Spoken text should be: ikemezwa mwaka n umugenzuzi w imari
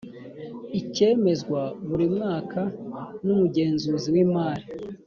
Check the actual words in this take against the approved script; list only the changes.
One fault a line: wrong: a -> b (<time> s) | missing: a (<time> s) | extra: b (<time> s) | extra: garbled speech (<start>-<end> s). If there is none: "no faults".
extra: buri (1.9 s)